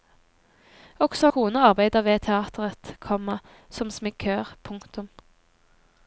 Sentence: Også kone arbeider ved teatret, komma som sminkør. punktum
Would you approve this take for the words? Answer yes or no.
yes